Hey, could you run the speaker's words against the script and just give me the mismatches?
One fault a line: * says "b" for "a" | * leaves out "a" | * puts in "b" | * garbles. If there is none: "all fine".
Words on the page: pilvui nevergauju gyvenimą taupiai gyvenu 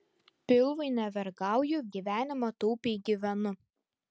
all fine